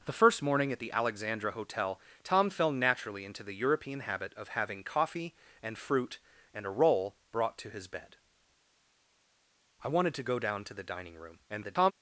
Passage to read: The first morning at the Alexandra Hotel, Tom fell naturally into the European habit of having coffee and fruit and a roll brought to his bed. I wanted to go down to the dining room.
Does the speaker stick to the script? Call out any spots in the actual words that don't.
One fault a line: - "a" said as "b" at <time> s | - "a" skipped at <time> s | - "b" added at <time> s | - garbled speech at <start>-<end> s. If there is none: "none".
- garbled speech at 11.5-11.9 s